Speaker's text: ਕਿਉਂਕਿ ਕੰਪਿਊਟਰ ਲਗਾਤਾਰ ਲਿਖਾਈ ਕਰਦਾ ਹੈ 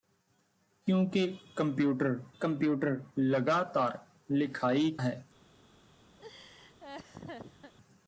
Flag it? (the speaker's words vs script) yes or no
yes